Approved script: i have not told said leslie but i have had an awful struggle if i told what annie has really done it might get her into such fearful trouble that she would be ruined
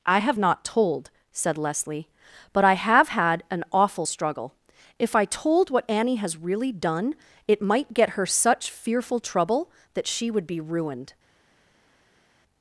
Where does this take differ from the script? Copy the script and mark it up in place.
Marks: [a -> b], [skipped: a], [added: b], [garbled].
i have not told said leslie but i have had an awful struggle if i told what annie has really done it might get her [skipped: into] such fearful trouble that she would be ruined